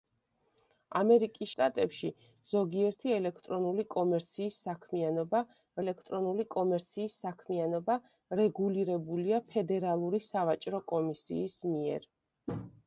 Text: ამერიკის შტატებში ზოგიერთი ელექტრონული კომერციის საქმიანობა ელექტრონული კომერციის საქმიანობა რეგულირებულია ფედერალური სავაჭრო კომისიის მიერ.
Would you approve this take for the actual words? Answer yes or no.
yes